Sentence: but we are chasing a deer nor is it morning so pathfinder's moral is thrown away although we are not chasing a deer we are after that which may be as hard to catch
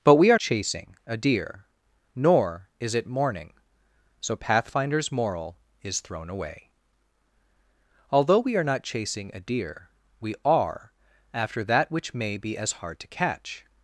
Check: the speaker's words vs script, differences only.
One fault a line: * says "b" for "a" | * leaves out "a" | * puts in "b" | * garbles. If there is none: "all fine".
all fine